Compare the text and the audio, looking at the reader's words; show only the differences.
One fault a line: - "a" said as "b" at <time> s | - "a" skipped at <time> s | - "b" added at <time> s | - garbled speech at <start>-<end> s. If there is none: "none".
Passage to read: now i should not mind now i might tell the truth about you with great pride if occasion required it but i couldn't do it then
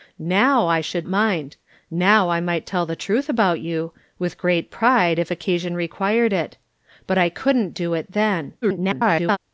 - "not" skipped at 1.1 s
- garbled speech at 8.6-9.4 s